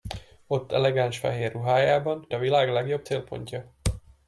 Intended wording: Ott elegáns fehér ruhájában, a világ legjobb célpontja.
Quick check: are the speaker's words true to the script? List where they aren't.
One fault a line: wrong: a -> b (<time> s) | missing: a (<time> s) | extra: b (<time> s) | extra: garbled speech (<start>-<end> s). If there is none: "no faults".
no faults